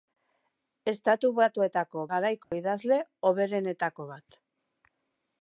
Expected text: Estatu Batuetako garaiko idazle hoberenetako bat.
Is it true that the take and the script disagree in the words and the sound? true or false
true